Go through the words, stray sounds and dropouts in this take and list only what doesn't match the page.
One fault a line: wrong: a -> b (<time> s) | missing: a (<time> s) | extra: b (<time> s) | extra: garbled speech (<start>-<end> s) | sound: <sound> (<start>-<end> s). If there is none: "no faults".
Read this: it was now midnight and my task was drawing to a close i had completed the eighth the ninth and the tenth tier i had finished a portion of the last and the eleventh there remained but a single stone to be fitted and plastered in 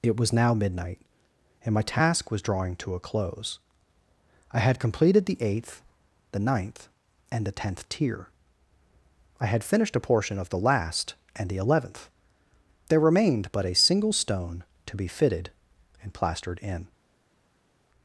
no faults